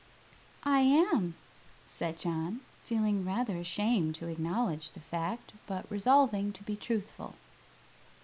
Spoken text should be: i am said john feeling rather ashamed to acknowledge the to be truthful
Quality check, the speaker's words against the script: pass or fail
fail